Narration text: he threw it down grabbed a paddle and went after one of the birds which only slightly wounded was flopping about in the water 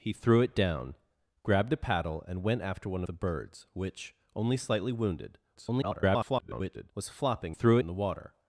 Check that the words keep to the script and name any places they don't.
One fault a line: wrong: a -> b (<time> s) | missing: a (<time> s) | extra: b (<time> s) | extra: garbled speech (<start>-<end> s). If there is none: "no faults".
missing: of (3.0 s)
extra: garbled speech (5.5-6.9 s)
wrong: about -> threw (7.5 s)